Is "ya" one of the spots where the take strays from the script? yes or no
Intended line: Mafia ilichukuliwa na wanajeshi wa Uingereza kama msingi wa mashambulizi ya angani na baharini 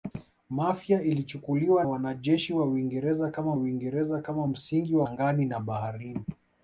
yes